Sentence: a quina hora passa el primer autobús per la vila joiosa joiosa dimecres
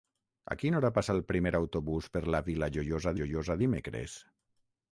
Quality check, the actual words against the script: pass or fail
pass